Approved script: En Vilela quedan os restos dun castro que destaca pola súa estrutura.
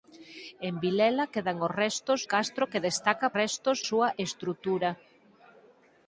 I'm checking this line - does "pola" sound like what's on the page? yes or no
no